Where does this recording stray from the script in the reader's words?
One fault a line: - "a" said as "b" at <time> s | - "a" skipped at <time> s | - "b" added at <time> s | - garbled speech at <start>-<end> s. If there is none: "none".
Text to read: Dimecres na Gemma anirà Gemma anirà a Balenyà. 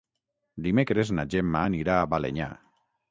- "Gemma anirà" skipped at 2.0 s